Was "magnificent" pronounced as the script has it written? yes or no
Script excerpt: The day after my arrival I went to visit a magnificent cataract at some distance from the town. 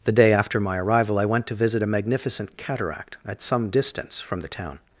yes